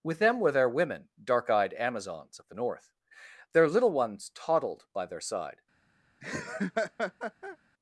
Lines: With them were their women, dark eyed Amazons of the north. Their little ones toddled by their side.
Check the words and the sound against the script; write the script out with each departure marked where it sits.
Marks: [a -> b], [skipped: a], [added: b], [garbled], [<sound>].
With them were their women, dark eyed Amazons of the north. Their little ones toddled by their side. [laugh]